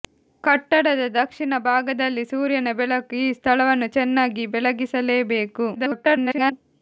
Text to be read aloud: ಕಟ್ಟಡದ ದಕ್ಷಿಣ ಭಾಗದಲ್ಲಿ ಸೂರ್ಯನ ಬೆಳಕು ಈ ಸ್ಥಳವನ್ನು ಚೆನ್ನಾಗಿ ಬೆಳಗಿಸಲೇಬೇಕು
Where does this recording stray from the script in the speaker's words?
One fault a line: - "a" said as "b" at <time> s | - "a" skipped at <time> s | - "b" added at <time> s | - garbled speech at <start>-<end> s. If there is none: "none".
- garbled speech at 5.7-6.5 s